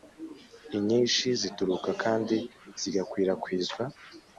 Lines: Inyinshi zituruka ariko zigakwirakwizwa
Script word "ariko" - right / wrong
wrong